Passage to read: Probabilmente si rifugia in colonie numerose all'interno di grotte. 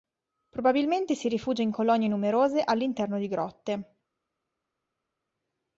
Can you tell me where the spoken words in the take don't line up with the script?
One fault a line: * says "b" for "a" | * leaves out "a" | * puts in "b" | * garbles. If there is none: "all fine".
all fine